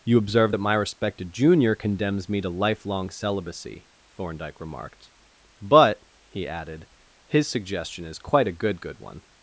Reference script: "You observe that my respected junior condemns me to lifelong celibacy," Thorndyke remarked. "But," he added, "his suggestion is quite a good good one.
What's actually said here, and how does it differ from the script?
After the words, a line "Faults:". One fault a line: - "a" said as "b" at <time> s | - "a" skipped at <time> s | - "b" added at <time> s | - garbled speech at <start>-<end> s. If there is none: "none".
"You observe that my respected junior condemns me to lifelong celibacy," Thorndyke remarked. "But," he added, "his suggestion is quite a good good one.
Faults:
none